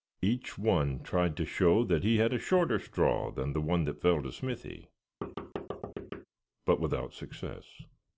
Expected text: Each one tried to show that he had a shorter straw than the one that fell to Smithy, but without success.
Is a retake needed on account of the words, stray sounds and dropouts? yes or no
yes